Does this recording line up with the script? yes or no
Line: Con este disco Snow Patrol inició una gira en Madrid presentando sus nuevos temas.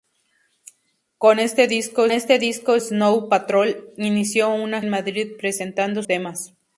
no